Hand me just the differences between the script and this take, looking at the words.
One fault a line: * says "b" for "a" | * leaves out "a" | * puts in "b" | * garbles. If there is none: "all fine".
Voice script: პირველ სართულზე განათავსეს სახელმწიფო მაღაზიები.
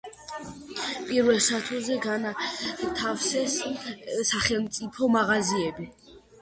all fine